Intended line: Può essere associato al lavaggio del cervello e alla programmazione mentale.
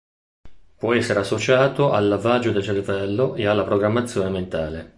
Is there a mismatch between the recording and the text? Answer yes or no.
no